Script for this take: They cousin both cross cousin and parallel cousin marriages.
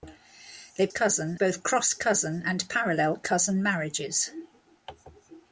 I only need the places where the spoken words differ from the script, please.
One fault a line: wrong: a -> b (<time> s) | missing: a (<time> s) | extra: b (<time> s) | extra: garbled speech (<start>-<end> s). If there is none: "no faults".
no faults